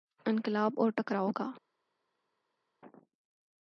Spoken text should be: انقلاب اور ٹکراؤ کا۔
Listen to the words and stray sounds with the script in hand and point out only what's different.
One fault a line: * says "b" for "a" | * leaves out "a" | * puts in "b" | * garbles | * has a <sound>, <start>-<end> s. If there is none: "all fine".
all fine